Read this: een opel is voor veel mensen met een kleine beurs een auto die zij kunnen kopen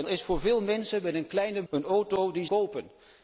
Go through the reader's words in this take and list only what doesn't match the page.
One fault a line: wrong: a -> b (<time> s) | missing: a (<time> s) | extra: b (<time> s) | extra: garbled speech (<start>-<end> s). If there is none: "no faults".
missing: opel (0.1 s)
missing: beurs (1.6 s)
missing: zij kunnen (2.5 s)